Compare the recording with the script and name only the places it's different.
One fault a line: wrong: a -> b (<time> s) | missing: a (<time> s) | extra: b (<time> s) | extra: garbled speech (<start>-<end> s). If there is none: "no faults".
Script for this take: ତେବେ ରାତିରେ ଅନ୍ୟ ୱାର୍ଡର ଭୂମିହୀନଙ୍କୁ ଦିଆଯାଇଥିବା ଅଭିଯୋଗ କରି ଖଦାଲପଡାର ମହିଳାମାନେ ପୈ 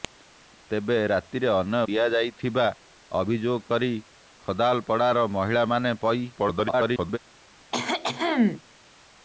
missing: ୱାର୍ଡର ଭୂମିହୀନଙ୍କୁ (1.8 s)
extra: garbled speech (6.4-7.2 s)